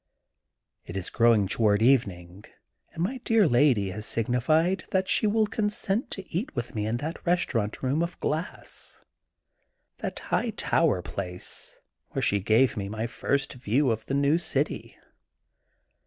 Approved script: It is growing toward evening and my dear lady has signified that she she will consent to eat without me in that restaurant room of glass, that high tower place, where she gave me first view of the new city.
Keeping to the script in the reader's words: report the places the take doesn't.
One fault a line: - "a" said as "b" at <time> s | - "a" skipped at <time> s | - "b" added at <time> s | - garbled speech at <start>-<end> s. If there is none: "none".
- "she" skipped at 5.3 s
- "without" said as "with" at 6.5 s
- "my" added at 12.9 s